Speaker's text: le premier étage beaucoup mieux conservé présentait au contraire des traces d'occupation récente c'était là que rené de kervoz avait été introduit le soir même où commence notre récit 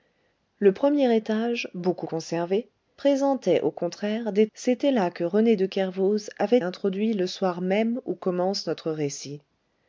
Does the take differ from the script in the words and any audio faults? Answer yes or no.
yes